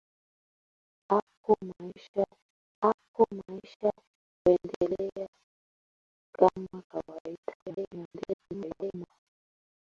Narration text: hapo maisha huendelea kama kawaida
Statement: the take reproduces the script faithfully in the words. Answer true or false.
false